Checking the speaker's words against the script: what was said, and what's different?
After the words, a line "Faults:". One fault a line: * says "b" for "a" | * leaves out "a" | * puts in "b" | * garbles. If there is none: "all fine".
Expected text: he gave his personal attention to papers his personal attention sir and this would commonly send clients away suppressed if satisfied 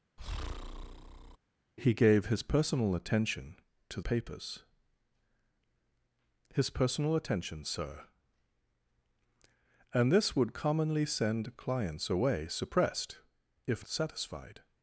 he gave his personal attention to papers his personal attention sir and this would commonly send clients away suppressed if satisfied
Faults:
all fine